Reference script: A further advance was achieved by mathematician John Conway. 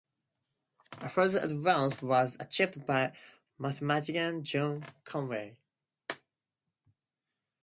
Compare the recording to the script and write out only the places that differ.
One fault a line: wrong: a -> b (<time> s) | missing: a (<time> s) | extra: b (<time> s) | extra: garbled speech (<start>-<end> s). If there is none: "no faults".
no faults